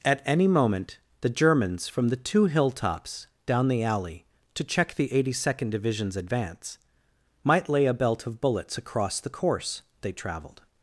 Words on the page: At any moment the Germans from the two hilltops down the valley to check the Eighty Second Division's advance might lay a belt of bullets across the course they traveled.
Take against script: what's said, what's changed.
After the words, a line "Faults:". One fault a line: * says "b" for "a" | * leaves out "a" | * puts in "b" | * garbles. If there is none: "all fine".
At any moment the Germans from the two hilltops down the alley to check the Eighty Second Division's advance might lay a belt of bullets across the course they traveled.
Faults:
* says "alley" for "valley"